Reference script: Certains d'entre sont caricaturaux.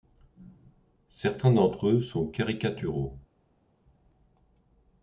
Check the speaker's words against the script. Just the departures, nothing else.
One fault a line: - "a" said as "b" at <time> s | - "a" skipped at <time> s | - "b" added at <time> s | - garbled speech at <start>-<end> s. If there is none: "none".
- "eux" added at 1.9 s